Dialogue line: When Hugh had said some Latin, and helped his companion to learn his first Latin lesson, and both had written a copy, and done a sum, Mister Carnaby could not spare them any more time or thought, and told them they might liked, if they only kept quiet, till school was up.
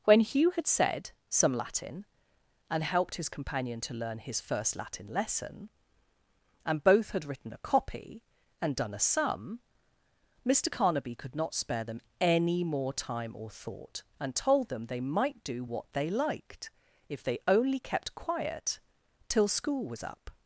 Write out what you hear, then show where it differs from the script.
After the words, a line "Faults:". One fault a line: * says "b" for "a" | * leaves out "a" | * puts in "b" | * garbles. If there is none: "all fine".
When Hugh had said some Latin, and helped his companion to learn his first Latin lesson, and both had written a copy, and done a sum, Mister Carnaby could not spare them any more time or thought, and told them they might do what they liked, if they only kept quiet, till school was up.
Faults:
* puts in "do what they"